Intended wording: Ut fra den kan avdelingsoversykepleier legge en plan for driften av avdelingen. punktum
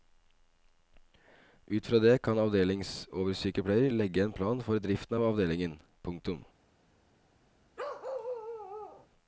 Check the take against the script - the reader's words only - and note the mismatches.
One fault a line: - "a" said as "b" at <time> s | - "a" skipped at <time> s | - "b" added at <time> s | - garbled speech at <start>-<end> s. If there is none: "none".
- "den" said as "det" at 2.0 s